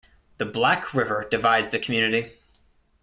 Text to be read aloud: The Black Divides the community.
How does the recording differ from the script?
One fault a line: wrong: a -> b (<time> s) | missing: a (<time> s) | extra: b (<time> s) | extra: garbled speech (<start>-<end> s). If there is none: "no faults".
extra: River (0.9 s)